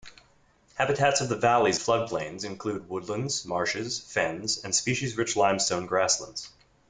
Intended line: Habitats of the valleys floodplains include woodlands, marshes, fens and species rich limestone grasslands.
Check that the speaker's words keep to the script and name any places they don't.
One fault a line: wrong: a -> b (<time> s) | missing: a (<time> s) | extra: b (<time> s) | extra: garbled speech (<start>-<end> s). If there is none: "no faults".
no faults